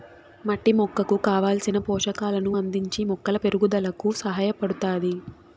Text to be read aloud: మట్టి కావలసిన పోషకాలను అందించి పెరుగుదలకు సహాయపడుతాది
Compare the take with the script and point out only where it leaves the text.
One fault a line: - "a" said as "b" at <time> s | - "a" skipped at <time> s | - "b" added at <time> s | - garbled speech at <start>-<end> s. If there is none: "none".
- "మొక్కకు" added at 0.8 s
- "మొక్కల" added at 3.1 s